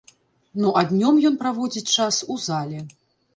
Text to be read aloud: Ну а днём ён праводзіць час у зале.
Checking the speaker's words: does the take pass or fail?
pass